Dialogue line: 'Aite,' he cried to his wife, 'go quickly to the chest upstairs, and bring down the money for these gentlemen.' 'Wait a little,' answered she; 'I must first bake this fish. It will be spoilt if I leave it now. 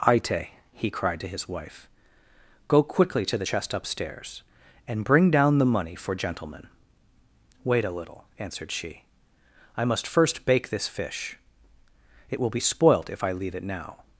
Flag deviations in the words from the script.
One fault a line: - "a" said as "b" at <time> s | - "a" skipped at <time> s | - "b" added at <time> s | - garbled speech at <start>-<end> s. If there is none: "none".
- "these" skipped at 6.2 s